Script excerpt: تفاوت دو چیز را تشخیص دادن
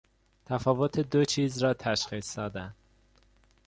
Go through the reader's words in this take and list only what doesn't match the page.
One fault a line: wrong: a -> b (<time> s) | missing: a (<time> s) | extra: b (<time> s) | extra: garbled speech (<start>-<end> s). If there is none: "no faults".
no faults